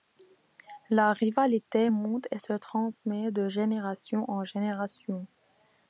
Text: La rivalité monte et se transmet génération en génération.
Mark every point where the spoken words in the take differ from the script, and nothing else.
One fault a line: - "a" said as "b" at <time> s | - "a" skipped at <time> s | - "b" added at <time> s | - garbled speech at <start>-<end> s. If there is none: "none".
- "de" added at 3.3 s